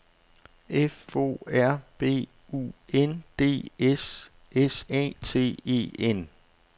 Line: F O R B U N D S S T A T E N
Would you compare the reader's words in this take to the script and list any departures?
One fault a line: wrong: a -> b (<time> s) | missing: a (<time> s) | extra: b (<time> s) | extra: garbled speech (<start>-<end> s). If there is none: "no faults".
missing: T (4.8 s)